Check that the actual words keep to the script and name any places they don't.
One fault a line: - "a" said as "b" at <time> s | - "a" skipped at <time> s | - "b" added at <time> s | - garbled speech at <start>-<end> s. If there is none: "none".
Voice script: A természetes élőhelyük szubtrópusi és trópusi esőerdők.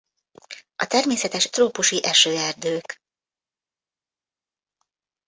- "élőhelyük szubtrópusi és" skipped at 1.5 s